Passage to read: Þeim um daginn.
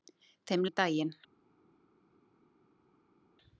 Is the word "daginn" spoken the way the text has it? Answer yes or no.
yes